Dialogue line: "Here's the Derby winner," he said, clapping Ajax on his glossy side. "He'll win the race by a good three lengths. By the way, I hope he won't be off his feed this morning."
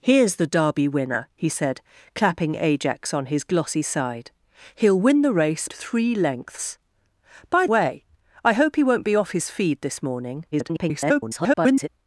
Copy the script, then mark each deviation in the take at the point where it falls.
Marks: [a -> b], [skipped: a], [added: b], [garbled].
"Here's the Derby winner," he said, clapping Ajax on his glossy side. "He'll win the race [skipped: by a good] three lengths. By [skipped: the] way, I hope he won't be off his feed this morning." [garbled]